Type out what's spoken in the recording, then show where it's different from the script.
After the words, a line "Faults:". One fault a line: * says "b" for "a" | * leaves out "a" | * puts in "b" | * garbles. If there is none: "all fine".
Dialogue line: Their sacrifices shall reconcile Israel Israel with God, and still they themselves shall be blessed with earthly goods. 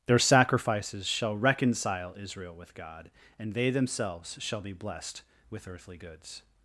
Their sacrifices shall reconcile Israel with God, and they themselves shall be blessed with earthly goods.
Faults:
* leaves out "Israel"
* leaves out "still"